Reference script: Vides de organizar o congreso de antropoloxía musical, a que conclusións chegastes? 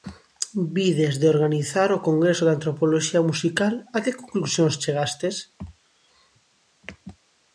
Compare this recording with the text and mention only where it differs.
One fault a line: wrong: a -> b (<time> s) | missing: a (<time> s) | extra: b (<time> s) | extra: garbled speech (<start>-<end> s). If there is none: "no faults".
no faults